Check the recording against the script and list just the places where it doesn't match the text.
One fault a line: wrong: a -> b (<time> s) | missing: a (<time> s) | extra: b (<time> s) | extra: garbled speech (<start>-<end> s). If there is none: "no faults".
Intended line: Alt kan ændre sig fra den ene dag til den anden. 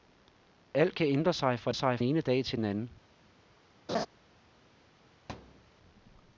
wrong: den -> sig (1.7 s)